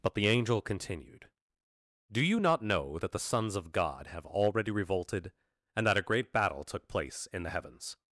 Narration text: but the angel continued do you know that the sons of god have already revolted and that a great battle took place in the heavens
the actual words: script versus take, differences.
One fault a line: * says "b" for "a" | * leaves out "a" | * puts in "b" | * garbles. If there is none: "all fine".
* puts in "not"